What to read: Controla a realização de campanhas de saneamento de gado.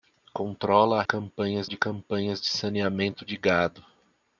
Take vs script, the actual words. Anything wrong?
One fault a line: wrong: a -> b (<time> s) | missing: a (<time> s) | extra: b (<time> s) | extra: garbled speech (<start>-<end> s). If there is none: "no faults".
wrong: realização -> campanhas (1.0 s)